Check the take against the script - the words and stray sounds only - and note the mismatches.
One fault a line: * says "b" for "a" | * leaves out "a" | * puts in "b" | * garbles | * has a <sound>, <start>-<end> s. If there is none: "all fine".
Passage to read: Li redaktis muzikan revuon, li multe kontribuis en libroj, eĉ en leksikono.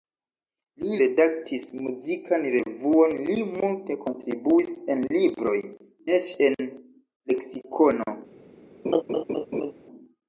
* has a laugh, 8.8-9.7 s